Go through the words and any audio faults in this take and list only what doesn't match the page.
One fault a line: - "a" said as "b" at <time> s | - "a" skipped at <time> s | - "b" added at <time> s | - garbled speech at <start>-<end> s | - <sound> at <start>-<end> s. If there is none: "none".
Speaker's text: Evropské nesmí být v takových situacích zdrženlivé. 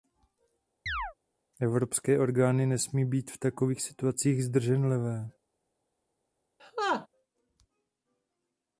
- chirp at 0.9-1.1 s
- "orgány" added at 2.2 s
- laugh at 6.6-7.1 s